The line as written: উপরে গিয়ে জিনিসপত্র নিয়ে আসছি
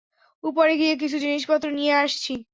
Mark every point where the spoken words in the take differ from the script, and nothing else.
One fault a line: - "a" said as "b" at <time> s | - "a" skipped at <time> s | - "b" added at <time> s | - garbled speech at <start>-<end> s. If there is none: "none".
- "কিছু" added at 0.9 s